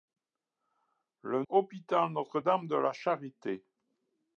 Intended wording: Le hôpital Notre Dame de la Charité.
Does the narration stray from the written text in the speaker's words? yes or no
no